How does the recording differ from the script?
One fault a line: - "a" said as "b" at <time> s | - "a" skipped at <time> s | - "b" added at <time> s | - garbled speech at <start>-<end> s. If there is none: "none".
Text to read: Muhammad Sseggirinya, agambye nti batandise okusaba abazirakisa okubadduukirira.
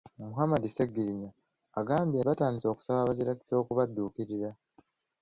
- "nti" skipped at 2.2 s